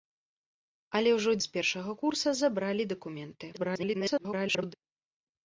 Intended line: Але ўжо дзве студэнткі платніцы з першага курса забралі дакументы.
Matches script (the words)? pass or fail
fail